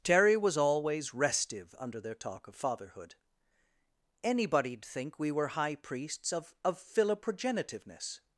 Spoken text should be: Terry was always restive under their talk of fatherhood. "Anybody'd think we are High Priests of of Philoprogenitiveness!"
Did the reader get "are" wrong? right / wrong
wrong